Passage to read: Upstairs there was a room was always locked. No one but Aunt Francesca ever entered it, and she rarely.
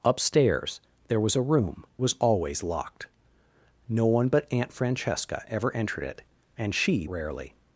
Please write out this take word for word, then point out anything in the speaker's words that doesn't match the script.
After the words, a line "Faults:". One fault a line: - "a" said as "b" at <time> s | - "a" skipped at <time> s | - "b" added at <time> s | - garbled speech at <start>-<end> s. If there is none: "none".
Upstairs there was a room was always locked. No one but Aunt Francesca ever entered it, and she rarely.
Faults:
none